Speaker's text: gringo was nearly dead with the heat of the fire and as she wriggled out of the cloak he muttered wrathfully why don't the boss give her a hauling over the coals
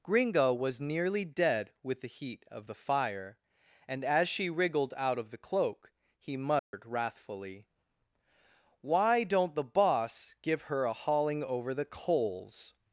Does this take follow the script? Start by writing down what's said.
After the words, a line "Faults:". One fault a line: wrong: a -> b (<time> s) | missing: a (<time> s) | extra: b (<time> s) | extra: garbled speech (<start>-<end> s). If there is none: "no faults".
gringo was nearly dead with the heat of the fire and as she wriggled out of the cloak he muttered wrathfully why don't the boss give her a hauling over the coals
Faults:
no faults